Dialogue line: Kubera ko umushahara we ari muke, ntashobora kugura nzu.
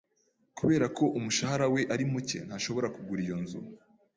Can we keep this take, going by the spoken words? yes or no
no